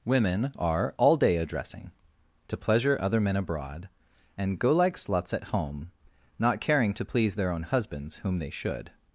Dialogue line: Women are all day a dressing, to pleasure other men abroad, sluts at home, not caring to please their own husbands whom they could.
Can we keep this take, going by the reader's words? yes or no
no